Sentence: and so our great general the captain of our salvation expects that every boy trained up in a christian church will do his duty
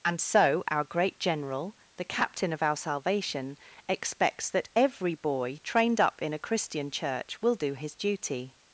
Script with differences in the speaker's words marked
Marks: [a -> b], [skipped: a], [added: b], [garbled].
and so our great general the captain of our salvation expects that every boy trained up in a christian church will do his duty